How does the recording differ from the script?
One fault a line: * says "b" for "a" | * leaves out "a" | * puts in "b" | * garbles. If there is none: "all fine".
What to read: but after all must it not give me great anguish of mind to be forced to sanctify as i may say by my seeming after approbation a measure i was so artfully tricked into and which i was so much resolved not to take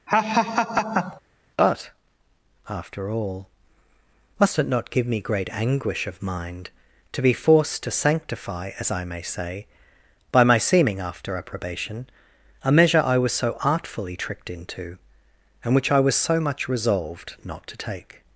all fine